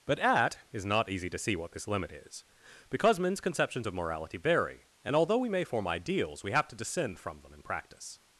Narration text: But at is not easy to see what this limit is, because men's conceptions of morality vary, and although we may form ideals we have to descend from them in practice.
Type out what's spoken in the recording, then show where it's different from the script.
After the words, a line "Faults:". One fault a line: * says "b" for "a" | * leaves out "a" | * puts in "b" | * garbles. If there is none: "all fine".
But at is not easy to see what this limit is, because men's conceptions of morality vary, and although we may form ideals we have to descend from them in practice.
Faults:
all fine